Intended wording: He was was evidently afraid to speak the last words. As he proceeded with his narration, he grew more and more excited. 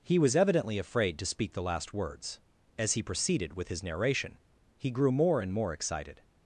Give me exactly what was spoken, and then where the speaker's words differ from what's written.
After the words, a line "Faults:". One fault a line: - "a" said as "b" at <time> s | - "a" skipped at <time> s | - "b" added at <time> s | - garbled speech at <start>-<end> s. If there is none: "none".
He was evidently afraid to speak the last words. As he proceeded with his narration, he grew more and more excited.
Faults:
- "was" skipped at 0.3 s